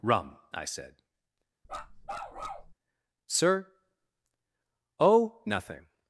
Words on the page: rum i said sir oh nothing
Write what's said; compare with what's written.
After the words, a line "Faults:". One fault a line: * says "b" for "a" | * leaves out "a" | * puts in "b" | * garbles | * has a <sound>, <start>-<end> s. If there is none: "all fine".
rum i said sir oh nothing
Faults:
* has a bark, 1.6-2.7 s